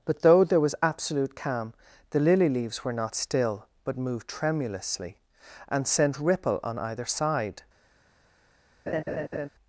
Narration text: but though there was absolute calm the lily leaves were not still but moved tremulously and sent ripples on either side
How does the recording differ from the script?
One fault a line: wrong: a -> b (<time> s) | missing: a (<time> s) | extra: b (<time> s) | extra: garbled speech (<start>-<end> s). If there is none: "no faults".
wrong: ripples -> ripple (6.2 s)